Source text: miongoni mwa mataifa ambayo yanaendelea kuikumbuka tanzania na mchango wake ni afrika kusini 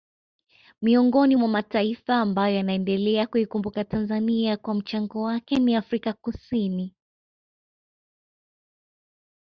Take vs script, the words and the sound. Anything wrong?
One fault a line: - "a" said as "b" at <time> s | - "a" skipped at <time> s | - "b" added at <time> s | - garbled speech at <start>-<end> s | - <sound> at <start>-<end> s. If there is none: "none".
- "na" said as "kwa" at 4.6 s